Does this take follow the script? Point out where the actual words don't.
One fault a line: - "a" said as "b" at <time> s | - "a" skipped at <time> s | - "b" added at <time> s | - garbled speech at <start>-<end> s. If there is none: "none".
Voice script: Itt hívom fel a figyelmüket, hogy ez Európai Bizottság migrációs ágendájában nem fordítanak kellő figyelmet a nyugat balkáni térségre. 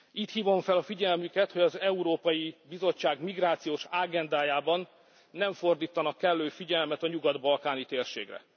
- "ez" said as "az" at 1.6 s